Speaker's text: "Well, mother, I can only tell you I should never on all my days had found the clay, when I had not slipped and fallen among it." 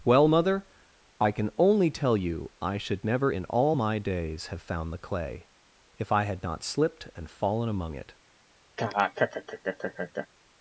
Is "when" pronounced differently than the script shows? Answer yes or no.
yes